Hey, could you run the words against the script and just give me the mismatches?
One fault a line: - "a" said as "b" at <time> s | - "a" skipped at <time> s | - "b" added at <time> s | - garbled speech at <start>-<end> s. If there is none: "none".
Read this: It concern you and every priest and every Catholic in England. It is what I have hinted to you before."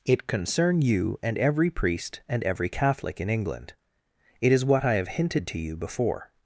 none